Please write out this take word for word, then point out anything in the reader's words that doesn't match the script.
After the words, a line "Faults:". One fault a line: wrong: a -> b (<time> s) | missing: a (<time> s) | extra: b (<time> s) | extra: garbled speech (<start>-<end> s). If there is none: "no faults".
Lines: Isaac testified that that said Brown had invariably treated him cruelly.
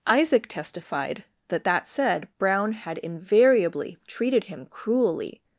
Isaac testified that that said Brown had invariably treated him cruelly.
Faults:
no faults